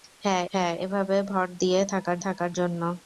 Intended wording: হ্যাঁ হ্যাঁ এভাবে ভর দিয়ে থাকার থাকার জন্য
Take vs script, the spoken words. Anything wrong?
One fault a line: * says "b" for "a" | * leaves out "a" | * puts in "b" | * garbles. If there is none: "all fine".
all fine